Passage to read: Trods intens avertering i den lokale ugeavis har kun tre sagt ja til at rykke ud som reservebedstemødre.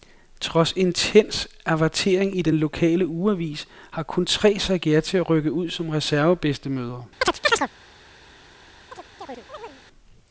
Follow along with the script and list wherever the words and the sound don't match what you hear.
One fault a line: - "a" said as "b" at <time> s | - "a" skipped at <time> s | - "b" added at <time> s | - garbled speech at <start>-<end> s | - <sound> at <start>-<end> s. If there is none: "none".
- chirp at 7.2-7.7 s
- chirp at 8.9-9.8 s